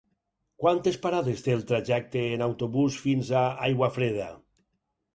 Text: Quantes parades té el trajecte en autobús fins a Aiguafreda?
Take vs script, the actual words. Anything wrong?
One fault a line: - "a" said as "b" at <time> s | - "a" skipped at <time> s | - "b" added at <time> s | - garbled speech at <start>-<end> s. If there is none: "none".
none